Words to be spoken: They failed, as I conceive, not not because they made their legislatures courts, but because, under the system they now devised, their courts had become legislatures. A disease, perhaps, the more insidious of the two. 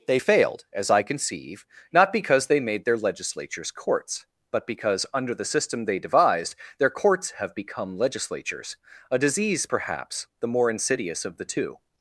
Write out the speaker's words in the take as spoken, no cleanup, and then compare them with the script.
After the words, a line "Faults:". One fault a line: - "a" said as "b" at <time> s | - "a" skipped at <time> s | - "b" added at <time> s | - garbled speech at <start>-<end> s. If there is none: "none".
They failed, as I conceive, not because they made their legislatures courts, but because, under the system they devised, their courts have become legislatures. A disease, perhaps, the more insidious of the two.
Faults:
- "not" skipped at 2.1 s
- "now" skipped at 6.0 s
- "had" said as "have" at 7.3 s